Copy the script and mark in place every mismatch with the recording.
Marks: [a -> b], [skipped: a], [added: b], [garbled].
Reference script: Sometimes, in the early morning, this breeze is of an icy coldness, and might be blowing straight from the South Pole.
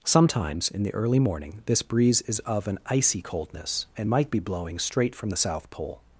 Sometimes, in the early morning, this breeze is of an icy coldness, and might be blowing straight from the South Pole.